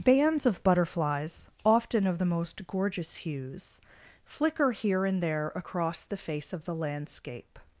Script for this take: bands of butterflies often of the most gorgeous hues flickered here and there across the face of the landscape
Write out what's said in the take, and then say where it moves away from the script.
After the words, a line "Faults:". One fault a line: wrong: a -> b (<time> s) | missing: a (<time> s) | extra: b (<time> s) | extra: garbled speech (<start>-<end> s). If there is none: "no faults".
bands of butterflies often of the most gorgeous hues flicker here and there across the face of the landscape
Faults:
wrong: flickered -> flicker (4.2 s)